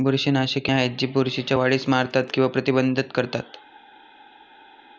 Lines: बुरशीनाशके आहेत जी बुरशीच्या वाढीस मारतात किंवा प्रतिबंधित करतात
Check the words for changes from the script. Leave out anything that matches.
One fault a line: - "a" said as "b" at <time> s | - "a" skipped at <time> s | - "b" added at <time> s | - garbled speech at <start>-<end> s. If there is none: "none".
none